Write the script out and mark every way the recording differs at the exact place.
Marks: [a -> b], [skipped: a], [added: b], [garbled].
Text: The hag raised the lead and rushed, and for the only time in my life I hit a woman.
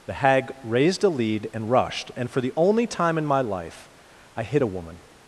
The hag raised [the -> a] lead and rushed, and for the only time in my life I hit a woman.